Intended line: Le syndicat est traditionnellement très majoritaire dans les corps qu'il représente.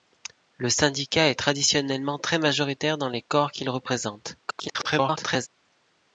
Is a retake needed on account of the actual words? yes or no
yes